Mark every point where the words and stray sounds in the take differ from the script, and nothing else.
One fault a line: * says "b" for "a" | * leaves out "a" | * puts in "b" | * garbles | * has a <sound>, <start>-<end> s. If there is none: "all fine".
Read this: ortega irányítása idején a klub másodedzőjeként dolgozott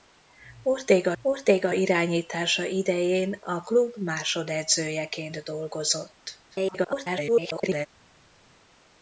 * puts in "ortega"
* garbles